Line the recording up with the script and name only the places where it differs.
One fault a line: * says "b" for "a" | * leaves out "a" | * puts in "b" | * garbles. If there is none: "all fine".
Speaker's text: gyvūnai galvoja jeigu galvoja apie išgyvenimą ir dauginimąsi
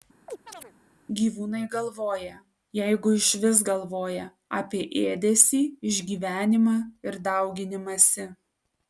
* puts in "išvis"
* puts in "ėdesį"